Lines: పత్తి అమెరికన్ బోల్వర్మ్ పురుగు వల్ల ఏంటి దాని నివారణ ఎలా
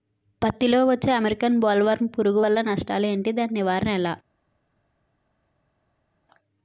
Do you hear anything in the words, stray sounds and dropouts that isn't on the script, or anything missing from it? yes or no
yes